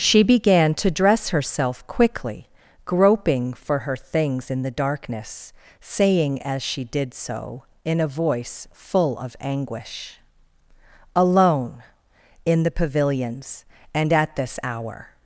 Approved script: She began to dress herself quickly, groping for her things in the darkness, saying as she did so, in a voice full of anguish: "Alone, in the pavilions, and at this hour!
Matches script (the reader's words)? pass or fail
pass